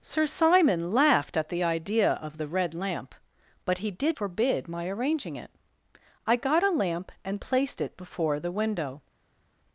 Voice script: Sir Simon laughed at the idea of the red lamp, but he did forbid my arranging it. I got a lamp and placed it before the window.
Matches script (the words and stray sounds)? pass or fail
pass